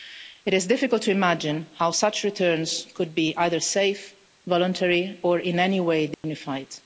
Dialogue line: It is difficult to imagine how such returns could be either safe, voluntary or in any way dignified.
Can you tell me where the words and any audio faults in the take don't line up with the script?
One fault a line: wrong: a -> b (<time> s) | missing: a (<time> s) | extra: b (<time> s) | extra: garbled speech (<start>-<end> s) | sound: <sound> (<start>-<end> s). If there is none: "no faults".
sound: dropout (6.1-6.2 s)